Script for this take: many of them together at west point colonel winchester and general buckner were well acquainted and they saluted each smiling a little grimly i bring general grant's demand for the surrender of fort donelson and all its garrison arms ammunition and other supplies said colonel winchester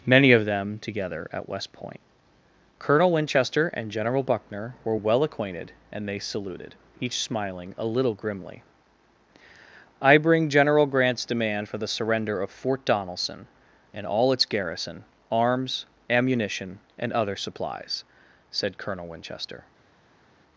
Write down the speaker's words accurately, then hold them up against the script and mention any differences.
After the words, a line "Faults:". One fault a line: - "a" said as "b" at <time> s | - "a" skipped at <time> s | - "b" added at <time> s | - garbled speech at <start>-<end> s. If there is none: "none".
many of them together at west point colonel winchester and general buckner were well acquainted and they saluted each smiling a little grimly i bring general grant's demand for the surrender of fort donelson and all its garrison arms ammunition and other supplies said colonel winchester
Faults:
none